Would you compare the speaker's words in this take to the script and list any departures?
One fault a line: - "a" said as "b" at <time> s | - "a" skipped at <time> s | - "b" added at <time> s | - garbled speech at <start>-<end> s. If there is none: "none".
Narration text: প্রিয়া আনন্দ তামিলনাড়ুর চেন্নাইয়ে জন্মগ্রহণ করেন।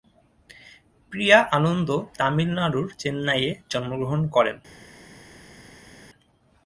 none